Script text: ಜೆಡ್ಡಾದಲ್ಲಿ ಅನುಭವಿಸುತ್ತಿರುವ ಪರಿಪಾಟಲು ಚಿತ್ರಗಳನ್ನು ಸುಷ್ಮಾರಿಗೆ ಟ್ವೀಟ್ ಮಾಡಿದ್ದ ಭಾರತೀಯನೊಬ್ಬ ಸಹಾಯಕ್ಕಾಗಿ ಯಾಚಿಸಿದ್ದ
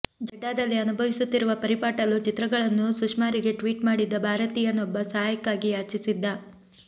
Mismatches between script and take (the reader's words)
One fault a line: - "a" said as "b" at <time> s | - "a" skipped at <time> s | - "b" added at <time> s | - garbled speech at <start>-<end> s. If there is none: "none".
none